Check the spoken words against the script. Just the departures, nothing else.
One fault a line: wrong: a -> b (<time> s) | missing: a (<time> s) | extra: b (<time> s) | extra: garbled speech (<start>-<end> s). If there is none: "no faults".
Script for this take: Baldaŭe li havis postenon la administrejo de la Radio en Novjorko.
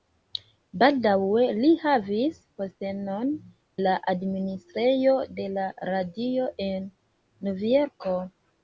no faults